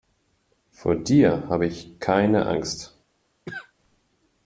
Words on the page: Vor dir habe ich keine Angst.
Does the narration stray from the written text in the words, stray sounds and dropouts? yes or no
yes